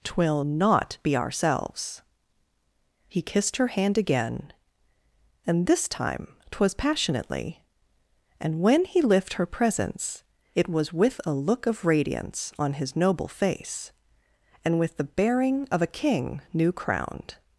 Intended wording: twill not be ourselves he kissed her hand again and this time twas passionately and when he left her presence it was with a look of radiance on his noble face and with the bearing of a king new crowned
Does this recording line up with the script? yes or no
no